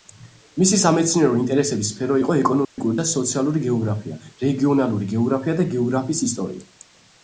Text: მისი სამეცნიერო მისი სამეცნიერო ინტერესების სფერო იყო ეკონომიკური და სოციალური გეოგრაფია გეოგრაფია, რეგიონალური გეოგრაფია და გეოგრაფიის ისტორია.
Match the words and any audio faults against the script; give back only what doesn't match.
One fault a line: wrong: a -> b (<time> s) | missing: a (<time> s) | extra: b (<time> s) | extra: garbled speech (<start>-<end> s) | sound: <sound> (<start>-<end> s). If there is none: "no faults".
missing: მისი სამეცნიერო (1.4 s)
sound: dropout (2.6-2.8 s)
missing: გეოგრაფია (4.2 s)